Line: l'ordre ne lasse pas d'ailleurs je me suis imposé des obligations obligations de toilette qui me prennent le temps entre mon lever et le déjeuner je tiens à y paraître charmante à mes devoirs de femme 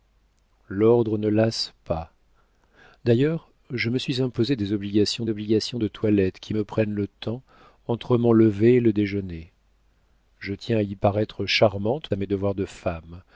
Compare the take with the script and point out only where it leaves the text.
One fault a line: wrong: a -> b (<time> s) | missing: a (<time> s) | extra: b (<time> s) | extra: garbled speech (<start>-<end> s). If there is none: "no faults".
no faults